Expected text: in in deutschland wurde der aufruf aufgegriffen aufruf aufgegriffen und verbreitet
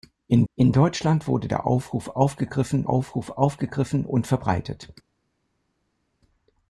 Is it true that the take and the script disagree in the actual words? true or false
false